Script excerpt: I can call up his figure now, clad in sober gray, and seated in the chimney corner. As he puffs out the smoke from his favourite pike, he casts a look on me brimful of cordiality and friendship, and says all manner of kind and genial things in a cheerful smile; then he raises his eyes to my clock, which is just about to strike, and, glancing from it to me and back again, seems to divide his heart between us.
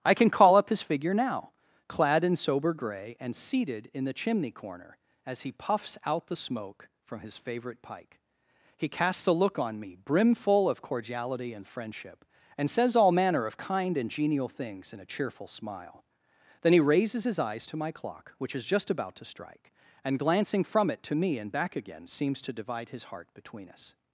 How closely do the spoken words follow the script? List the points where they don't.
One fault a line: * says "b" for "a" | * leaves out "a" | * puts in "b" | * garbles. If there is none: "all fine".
all fine